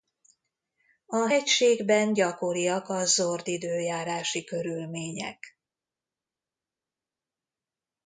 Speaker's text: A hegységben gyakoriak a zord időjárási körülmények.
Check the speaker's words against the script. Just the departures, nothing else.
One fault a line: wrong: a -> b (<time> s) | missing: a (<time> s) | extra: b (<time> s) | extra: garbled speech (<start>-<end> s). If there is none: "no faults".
no faults